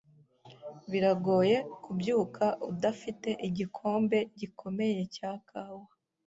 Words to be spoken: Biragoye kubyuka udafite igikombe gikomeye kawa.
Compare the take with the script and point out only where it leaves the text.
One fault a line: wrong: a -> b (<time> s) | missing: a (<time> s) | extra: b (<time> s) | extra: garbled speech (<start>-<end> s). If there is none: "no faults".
extra: cya (5.1 s)